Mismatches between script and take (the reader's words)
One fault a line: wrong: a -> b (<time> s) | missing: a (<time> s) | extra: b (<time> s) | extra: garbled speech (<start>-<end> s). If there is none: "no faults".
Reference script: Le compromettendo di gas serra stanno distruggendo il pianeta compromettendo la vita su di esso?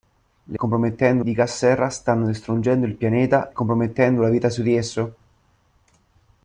no faults